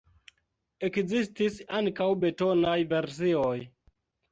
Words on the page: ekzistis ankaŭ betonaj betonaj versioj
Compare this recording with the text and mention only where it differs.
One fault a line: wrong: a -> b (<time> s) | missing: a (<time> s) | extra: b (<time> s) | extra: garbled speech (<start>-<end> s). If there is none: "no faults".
missing: betonaj (2.8 s)